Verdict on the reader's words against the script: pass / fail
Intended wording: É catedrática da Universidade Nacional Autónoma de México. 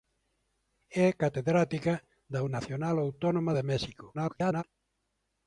fail